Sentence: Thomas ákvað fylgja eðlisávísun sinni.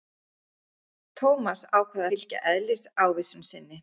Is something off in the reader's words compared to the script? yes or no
no